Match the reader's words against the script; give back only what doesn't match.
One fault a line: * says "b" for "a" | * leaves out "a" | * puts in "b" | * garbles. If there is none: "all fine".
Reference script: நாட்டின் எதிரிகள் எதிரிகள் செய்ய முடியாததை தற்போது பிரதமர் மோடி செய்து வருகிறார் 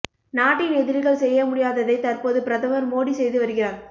* leaves out "எதிரிகள்"